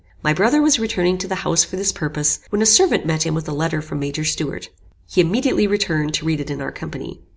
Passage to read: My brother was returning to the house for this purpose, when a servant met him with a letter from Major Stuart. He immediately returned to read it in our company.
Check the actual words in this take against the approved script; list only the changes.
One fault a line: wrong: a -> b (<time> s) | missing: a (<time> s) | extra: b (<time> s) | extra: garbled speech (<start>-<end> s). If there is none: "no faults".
no faults